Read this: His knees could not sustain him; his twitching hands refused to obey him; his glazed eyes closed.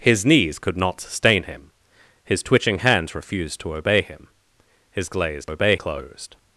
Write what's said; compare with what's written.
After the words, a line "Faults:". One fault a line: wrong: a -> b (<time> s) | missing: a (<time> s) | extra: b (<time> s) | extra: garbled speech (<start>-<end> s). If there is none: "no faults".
His knees could not sustain him; his twitching hands refused to obey him; his glazed obey closed.
Faults:
wrong: eyes -> obey (5.5 s)